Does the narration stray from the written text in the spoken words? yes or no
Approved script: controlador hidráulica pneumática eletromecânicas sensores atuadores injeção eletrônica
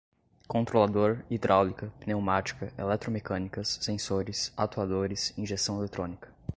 no